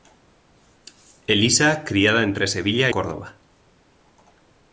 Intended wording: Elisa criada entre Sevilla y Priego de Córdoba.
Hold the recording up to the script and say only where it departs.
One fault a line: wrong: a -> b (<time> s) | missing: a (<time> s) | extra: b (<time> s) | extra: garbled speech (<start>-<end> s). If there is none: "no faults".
missing: y Priego de (2.9 s)